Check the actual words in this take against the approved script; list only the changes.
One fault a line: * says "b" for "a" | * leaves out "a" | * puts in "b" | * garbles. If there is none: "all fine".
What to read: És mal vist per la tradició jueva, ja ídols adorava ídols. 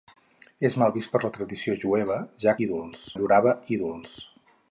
all fine